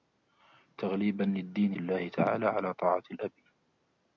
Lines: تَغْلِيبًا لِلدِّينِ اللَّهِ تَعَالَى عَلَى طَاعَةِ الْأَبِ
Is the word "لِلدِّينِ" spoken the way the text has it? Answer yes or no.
yes